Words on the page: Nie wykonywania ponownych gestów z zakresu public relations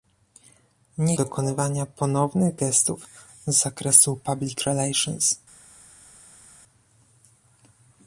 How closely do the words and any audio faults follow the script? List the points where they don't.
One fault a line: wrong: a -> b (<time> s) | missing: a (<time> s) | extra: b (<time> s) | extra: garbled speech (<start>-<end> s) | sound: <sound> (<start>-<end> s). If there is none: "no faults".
no faults